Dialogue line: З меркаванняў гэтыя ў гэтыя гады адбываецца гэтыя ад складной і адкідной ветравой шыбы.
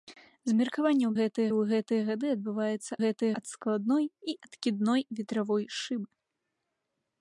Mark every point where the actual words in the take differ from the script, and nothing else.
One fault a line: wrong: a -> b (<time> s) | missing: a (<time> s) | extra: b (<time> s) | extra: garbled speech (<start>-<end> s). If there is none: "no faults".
no faults